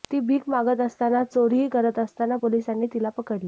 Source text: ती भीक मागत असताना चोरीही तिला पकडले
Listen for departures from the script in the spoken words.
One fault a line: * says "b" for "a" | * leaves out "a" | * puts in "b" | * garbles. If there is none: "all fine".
* puts in "करत असताना पोलिसांनी"